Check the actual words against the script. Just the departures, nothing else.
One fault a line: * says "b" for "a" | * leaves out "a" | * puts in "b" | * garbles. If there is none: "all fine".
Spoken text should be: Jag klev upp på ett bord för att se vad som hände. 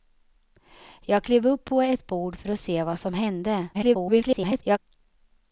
* garbles